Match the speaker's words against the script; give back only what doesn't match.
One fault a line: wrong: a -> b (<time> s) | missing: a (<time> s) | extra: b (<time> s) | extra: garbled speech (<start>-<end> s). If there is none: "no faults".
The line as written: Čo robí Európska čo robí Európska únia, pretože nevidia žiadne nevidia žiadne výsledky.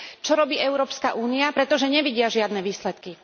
missing: čo robí Európska (1.2 s)
missing: nevidia žiadne (2.6 s)